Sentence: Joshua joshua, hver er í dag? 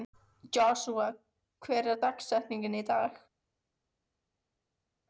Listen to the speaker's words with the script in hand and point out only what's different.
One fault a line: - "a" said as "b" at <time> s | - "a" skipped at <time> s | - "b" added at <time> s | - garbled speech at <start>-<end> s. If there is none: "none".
- "joshua" skipped at 1.1 s
- "dagsetningin" added at 2.0 s